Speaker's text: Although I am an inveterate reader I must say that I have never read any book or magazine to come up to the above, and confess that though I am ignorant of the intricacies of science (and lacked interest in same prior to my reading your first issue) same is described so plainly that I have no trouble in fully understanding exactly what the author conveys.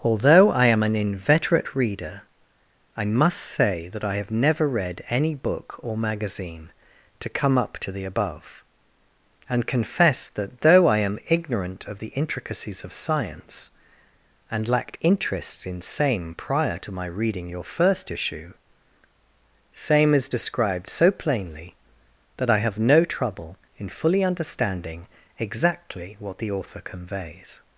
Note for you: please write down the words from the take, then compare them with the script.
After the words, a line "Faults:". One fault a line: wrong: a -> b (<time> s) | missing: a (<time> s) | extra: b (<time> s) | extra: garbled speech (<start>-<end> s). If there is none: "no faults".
Although I am an inveterate reader I must say that I have never read any book or magazine to come up to the above, and confess that though I am ignorant of the intricacies of science (and lacked interest in same prior to my reading your first issue) same is described so plainly that I have no trouble in fully understanding exactly what the author conveys.
Faults:
no faults